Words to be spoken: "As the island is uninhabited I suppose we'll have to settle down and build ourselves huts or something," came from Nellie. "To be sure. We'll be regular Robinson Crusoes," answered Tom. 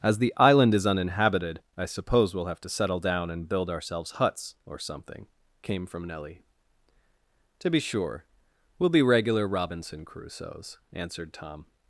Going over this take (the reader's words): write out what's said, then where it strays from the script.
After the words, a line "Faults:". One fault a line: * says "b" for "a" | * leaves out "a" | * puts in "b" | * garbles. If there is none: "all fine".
"As the island is uninhabited I suppose we'll have to settle down and build ourselves huts or something," came from Nellie. "To be sure. We'll be regular Robinson Crusoes," answered Tom.
Faults:
all fine